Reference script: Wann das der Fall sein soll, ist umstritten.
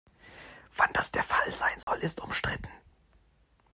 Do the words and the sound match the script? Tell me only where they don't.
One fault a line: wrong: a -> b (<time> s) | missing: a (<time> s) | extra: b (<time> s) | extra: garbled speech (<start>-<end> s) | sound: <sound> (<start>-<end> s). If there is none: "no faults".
sound: dropout (1.8-1.9 s)